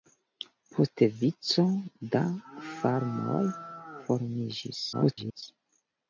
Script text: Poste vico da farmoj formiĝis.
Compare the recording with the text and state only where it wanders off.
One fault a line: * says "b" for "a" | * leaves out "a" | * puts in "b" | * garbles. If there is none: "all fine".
* garbles